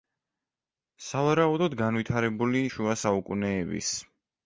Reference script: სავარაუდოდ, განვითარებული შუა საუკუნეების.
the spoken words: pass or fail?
pass